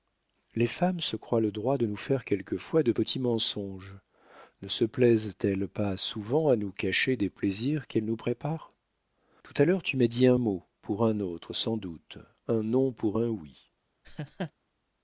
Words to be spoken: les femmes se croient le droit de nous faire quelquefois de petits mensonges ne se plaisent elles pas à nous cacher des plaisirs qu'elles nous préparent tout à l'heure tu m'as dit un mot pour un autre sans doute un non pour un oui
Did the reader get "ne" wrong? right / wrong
right